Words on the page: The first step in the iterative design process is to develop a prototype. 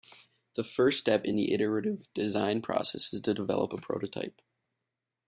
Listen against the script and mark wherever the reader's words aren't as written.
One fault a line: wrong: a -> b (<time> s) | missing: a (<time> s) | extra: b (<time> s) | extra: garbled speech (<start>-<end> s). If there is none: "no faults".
no faults